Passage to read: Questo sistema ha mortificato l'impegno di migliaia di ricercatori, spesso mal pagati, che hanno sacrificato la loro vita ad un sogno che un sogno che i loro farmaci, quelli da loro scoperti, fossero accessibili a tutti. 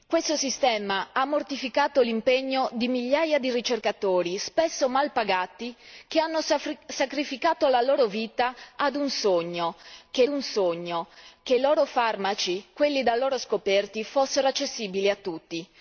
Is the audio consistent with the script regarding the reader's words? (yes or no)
yes